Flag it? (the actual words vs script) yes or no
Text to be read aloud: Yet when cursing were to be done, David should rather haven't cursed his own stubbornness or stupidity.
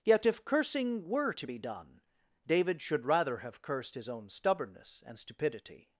yes